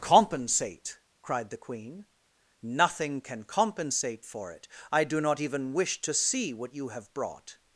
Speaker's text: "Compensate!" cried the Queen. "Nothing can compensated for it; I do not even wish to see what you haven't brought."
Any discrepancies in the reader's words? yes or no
yes